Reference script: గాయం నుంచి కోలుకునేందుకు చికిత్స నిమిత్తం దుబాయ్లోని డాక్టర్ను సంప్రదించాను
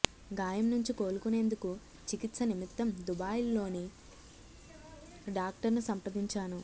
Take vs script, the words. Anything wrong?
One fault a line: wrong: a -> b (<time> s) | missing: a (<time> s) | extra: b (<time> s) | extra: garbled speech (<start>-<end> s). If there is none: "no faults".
no faults